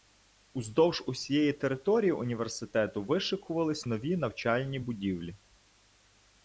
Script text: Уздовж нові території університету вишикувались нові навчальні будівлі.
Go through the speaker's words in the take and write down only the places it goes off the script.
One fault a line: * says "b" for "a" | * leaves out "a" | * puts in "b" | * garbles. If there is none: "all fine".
* says "усієї" for "нові"